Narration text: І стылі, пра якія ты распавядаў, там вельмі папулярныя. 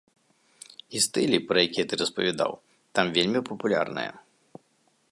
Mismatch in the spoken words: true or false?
false